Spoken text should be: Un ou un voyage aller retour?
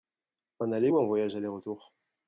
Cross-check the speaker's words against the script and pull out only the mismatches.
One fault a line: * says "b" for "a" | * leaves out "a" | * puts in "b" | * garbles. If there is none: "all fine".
* puts in "aller"